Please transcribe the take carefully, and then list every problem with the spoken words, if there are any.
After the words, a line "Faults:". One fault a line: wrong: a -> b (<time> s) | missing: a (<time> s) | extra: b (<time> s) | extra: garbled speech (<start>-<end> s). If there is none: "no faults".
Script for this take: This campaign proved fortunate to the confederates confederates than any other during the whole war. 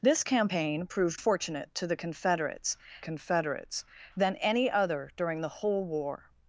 This campaign proved fortunate to the confederates confederates than any other during the whole war.
Faults:
no faults